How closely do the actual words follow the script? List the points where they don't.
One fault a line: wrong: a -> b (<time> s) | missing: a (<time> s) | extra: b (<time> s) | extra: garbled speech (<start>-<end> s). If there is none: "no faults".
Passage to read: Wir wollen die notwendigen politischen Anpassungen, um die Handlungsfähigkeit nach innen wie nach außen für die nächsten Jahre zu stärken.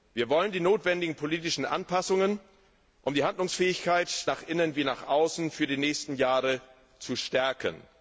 no faults